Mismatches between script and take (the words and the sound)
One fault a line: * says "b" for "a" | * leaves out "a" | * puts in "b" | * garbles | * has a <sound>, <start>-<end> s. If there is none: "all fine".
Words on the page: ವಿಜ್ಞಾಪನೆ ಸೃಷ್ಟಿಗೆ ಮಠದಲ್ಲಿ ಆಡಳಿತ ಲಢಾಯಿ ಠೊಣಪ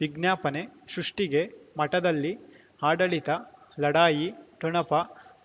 all fine